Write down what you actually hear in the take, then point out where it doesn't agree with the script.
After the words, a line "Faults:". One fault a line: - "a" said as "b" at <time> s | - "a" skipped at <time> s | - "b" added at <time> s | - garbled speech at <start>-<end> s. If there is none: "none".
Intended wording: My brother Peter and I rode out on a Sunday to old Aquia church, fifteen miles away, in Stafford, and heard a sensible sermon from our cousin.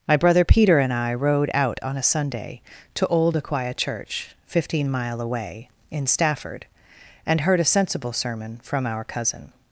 My brother Peter and I rode out on a Sunday to old Aquia church, fifteen mile away, in Stafford, and heard a sensible sermon from our cousin.
Faults:
- "miles" said as "mile" at 4.9 s